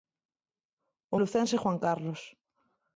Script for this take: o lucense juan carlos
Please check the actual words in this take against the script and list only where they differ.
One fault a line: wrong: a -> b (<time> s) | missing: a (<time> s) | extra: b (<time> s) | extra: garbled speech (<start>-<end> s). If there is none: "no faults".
no faults